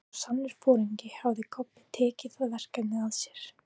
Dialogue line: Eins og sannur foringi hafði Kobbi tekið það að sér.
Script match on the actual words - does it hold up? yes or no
no